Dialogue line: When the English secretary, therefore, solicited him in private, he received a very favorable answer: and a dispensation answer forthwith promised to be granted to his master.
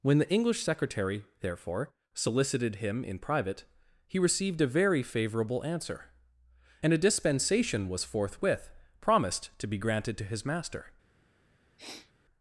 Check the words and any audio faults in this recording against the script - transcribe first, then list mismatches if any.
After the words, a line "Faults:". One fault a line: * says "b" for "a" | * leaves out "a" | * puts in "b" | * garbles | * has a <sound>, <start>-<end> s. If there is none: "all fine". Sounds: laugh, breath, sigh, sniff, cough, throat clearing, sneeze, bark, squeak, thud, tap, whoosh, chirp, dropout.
When the English secretary, therefore, solicited him in private, he received a very favorable answer: and a dispensation was forthwith promised to be granted to his master.
Faults:
* says "was" for "answer"
* has a sniff, 11.8-12.1 s